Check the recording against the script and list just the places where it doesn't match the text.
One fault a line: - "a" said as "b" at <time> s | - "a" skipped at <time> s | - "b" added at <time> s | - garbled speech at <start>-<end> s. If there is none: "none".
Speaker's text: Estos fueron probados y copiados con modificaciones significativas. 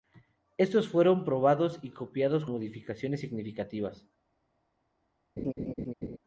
- "con" skipped at 2.5 s